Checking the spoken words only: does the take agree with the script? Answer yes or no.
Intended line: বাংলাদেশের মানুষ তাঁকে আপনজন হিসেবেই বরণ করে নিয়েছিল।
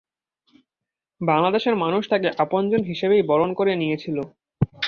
yes